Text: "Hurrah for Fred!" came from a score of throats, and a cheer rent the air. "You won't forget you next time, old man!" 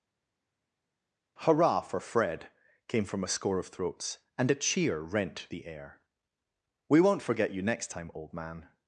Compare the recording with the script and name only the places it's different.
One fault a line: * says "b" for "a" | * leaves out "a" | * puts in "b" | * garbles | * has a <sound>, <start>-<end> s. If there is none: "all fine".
* says "We" for "You"